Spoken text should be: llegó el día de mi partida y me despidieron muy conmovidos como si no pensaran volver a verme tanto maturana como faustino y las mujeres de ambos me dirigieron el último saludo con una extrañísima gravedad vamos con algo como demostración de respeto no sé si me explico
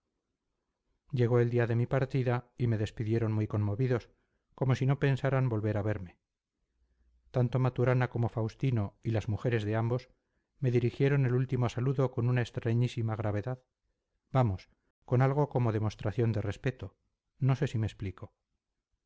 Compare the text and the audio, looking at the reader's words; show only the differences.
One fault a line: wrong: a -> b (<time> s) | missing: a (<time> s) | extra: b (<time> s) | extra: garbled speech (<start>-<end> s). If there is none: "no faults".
no faults